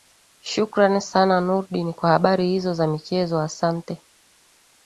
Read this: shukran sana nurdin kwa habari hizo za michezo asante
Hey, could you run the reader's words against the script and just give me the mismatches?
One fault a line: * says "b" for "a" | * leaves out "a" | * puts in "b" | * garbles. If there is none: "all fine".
all fine